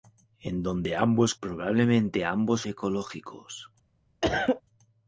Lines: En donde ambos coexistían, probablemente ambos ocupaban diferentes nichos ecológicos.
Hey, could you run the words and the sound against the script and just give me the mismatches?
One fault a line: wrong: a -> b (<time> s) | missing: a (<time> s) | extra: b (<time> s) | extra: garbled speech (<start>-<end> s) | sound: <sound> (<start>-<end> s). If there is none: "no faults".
missing: coexistían (1.4 s)
missing: ocupaban diferentes nichos (2.7 s)
sound: cough (4.2-4.6 s)